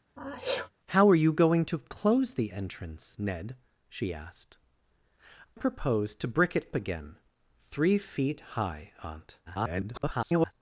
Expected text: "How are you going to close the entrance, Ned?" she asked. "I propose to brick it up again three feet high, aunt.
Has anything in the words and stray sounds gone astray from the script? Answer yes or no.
yes